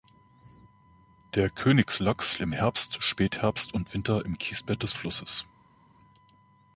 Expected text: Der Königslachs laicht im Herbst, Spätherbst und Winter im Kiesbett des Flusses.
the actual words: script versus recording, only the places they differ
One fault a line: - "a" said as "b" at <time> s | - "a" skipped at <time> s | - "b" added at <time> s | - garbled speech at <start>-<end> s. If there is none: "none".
- "laicht" skipped at 2.4 s